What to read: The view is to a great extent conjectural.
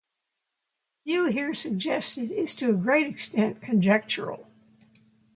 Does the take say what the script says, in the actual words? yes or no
no